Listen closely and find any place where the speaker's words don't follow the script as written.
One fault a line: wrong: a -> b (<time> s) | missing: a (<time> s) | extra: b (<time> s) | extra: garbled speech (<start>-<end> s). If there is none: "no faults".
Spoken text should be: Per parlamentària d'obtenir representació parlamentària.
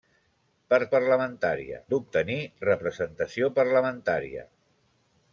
no faults